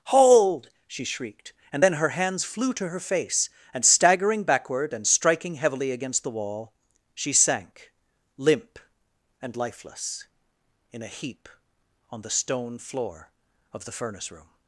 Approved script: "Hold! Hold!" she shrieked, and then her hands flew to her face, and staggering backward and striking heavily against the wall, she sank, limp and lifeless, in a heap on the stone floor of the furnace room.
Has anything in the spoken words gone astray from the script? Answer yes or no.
yes